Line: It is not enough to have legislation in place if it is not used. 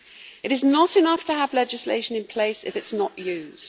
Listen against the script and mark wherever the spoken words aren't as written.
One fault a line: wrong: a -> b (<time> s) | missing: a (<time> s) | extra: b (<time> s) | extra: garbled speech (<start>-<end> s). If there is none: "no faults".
no faults